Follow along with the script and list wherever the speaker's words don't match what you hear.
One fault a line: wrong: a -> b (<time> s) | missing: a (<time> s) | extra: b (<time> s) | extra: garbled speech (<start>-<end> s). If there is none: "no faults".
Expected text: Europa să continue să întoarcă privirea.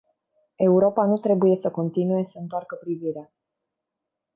extra: nu trebuie (1.1 s)